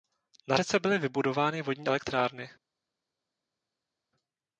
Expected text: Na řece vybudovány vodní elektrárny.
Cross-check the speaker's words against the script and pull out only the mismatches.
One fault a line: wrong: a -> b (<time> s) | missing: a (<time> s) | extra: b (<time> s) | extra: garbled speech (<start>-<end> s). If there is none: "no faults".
extra: byly (0.8 s)